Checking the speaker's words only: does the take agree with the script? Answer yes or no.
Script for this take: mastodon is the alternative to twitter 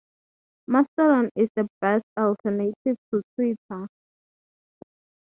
no